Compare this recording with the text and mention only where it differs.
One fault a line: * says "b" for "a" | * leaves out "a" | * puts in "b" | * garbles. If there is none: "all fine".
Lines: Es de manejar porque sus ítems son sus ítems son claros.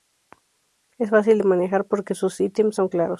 * puts in "fácil"
* leaves out "sus ítems son"